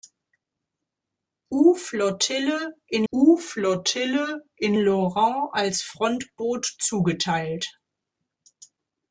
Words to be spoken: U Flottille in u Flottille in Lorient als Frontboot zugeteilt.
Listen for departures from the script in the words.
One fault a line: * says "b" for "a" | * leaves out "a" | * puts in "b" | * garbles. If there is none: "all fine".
all fine